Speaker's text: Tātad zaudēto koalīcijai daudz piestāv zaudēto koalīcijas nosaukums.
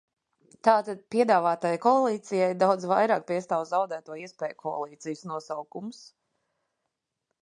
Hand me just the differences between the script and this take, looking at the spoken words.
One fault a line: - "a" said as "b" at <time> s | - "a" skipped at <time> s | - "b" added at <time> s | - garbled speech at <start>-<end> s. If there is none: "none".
- "zaudēto" said as "piedāvātajai" at 1.1 s
- "vairāk" added at 2.9 s
- "iespēju" added at 4.2 s